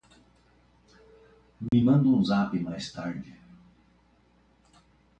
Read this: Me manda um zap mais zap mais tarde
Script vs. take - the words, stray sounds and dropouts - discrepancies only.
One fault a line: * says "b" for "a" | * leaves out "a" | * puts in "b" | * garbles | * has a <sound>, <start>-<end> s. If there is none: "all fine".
* has a dropout, 1.7-1.7 s
* leaves out "zap mais"